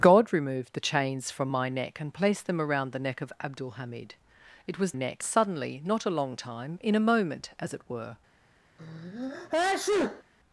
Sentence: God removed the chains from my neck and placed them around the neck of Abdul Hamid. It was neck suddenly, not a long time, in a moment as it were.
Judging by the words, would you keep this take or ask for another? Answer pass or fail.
pass